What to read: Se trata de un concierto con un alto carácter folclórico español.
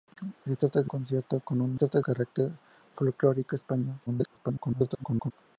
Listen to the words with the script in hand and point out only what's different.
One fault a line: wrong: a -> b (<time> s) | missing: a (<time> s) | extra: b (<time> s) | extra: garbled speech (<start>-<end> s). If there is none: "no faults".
missing: un (0.9 s)
wrong: alto -> trata (1.7 s)
extra: garbled speech (4.1-5.3 s)